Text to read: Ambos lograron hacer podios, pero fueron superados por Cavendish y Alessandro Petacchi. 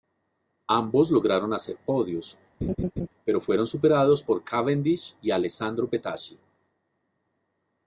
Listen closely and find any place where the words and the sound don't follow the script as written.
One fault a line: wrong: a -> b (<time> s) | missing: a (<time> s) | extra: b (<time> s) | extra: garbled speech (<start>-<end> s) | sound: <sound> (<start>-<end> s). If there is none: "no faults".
sound: laugh (2.6-3.1 s)